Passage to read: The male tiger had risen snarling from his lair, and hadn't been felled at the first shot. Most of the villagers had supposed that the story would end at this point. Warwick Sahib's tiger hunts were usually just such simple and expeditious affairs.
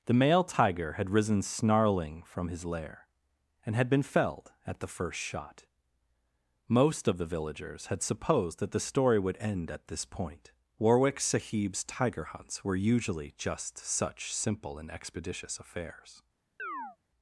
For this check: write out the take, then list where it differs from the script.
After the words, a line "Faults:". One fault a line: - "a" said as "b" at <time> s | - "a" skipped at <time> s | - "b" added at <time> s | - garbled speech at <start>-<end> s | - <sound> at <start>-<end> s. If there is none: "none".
The male tiger had risen snarling from his lair, and had been felled at the first shot. Most of the villagers had supposed that the story would end at this point. Warwick Sahib's tiger hunts were usually just such simple and expeditious affairs.
Faults:
- "hadn't" said as "had" at 3.8 s
- chirp at 16.6-17.0 s